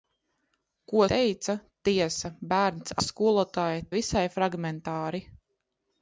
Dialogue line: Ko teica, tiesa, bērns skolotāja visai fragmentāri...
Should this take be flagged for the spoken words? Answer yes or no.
no